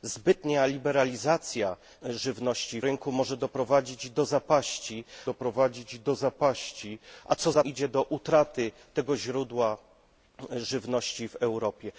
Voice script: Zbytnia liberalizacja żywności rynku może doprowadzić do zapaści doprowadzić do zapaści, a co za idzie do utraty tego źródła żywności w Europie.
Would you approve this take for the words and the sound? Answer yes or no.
yes